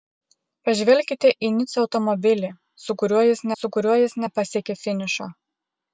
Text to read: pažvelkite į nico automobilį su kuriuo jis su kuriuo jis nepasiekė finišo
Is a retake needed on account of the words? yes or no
no